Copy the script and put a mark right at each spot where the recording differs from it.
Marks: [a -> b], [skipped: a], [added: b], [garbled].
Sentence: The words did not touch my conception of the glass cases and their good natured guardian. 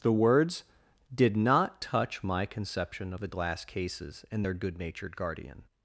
The words did not touch my conception of the glass cases and their good natured guardian.